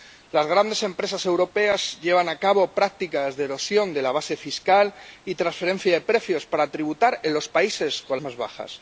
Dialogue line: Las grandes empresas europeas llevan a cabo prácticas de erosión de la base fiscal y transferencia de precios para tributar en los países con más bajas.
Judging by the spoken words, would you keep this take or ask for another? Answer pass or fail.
pass